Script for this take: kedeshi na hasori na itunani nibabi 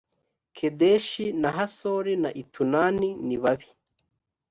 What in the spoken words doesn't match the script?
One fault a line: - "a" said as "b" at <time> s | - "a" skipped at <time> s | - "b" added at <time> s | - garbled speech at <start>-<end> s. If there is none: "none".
none